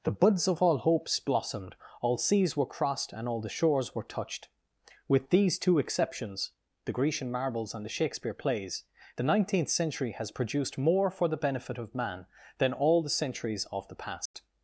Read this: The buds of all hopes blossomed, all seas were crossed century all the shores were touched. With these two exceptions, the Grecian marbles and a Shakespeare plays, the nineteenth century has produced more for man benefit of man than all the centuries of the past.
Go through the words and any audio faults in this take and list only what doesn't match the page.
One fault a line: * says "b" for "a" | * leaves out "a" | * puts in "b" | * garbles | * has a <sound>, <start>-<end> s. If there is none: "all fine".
* says "and" for "century"
* says "the" for "a"
* says "the" for "man"
* has a dropout, 14.3-14.3 s